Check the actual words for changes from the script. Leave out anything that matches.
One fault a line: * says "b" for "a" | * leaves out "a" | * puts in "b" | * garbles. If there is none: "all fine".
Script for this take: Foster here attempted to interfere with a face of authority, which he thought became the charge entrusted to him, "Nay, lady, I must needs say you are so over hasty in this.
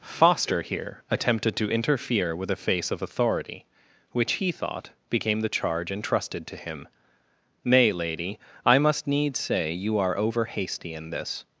* leaves out "so"